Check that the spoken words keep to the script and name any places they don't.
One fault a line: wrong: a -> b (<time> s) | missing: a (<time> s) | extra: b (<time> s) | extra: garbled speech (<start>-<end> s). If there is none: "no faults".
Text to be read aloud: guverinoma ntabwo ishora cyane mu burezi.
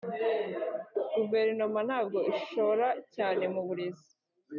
no faults